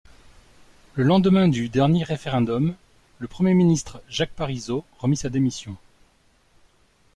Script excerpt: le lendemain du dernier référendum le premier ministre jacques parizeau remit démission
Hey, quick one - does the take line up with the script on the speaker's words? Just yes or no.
no